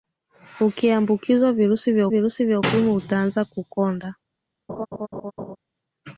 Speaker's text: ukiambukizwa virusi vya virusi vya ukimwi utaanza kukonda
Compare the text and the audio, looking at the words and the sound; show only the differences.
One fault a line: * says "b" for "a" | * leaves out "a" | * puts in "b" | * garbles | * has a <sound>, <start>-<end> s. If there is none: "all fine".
* has a laugh, 4.7-5.6 s